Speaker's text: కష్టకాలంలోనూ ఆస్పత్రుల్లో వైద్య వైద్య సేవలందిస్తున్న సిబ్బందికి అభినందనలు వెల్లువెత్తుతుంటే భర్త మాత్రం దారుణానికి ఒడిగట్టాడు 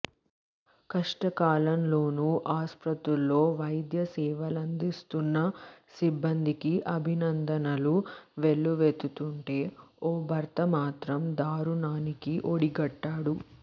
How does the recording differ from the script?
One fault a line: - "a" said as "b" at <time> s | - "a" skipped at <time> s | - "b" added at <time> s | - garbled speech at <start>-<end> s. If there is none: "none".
- "వైద్య" skipped at 4.0 s
- "ఓ" added at 10.0 s